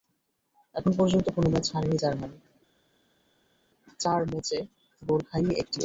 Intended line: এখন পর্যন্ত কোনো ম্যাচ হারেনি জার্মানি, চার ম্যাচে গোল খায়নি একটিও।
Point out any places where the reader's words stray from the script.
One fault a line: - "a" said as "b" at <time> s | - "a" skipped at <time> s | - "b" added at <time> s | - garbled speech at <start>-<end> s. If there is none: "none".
none